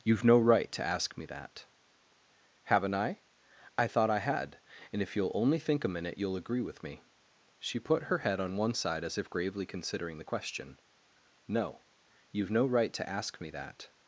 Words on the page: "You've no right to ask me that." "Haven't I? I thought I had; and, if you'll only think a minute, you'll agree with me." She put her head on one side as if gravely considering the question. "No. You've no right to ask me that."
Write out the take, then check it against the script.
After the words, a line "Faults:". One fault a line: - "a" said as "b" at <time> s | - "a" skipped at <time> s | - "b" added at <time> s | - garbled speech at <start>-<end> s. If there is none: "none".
"You've no right to ask me that." "Haven't I? I thought I had; and, if you'll only think a minute, you'll agree with me." She put her head on one side as if gravely considering the question. "No. You've no right to ask me that."
Faults:
none